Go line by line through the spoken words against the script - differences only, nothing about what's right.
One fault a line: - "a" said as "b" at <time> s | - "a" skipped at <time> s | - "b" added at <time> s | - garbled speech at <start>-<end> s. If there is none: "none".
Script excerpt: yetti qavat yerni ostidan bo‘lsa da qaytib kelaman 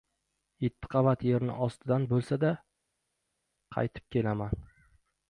none